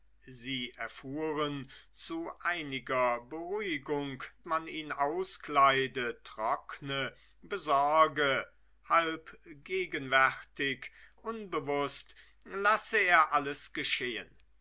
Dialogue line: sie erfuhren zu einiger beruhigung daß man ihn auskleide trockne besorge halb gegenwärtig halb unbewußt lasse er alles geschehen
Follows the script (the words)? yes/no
no